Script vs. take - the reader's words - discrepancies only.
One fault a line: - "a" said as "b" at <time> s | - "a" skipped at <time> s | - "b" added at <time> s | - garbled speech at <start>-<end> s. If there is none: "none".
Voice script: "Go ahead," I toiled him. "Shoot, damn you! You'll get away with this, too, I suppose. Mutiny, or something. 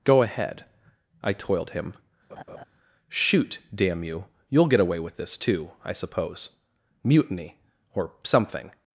none